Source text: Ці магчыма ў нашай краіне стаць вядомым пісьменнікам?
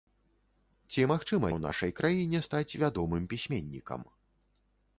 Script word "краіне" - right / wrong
right